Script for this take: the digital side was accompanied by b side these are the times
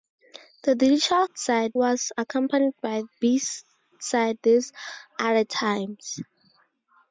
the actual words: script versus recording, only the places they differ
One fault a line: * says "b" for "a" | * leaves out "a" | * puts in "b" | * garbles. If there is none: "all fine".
all fine